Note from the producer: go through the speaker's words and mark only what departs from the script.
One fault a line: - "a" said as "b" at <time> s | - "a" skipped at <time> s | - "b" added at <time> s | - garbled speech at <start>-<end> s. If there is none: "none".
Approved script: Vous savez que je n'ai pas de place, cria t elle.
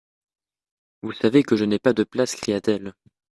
none